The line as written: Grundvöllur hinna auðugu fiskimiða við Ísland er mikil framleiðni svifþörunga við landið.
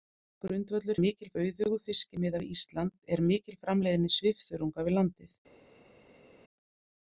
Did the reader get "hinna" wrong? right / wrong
wrong